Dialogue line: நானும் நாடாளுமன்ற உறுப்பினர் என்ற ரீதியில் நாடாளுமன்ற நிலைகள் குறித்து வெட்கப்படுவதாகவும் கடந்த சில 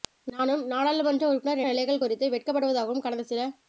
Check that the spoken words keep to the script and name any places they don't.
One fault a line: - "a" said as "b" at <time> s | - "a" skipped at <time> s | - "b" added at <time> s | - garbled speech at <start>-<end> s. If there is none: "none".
- "என்ற ரீதியில் நாடாளுமன்ற" skipped at 1.6 s